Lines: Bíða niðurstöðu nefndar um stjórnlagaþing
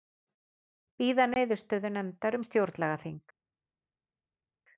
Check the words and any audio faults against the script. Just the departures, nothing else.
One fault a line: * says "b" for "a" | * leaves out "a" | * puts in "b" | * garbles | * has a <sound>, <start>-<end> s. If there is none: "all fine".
all fine